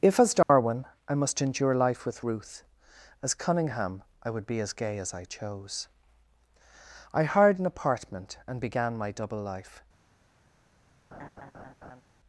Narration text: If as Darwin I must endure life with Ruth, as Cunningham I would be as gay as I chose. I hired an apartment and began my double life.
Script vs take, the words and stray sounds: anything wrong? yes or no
yes